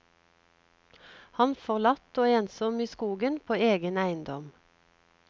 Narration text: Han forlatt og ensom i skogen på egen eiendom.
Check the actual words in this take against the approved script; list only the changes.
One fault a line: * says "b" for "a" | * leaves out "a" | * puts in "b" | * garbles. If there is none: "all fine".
all fine